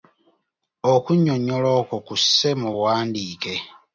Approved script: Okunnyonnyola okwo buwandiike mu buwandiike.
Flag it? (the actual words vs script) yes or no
yes